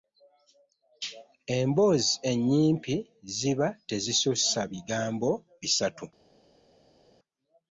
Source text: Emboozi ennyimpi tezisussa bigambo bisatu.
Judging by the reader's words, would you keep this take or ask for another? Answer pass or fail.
fail